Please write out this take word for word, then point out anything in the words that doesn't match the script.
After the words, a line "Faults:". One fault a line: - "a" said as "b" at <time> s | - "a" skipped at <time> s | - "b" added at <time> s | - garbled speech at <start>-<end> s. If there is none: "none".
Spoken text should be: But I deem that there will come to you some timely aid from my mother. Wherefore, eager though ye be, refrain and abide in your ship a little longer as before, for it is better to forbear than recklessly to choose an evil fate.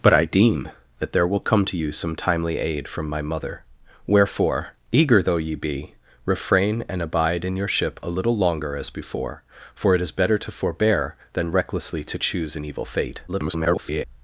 But I deem that there will come to you some timely aid from my mother. Wherefore, eager though ye be, refrain and abide in your ship a little longer as before, for it is better to forbear than recklessly to choose an evil fate. [garbled]
Faults:
- garbled speech at 13.3-14.0 s